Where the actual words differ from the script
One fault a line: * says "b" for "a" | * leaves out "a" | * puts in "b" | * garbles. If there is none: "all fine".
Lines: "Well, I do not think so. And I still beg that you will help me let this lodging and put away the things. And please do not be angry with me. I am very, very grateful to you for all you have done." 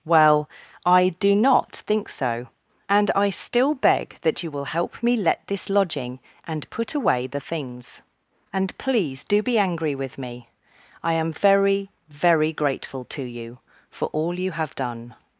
* leaves out "not"